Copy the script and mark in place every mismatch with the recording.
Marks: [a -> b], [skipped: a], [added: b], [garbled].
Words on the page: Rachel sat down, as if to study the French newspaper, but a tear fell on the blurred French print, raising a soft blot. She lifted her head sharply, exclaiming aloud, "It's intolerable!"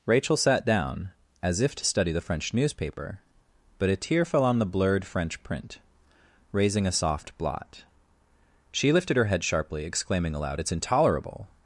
Rachel sat down, as if to study the French newspaper, but a tear fell on the blurred French print, raising a soft blot. She lifted her head sharply, exclaiming aloud, "It's intolerable!"